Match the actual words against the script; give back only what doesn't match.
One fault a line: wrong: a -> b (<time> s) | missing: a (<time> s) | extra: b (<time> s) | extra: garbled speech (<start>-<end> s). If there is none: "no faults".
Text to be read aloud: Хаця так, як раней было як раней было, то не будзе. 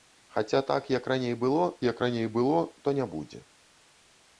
no faults